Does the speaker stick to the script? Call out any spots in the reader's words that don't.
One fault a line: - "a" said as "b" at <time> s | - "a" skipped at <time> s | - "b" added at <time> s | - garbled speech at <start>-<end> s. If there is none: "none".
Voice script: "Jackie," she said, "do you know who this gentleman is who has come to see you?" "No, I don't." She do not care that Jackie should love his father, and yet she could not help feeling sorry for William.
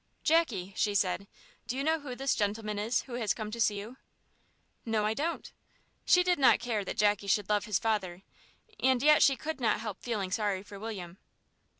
- "do" said as "did" at 6.2 s